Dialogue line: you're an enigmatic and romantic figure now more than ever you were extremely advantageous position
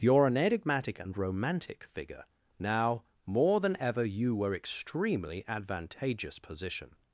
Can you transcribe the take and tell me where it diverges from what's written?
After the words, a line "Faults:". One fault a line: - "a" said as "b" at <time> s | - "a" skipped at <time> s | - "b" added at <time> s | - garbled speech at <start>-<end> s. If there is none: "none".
you're an enigmatic and romantic figure now more than ever you were extremely advantageous position
Faults:
none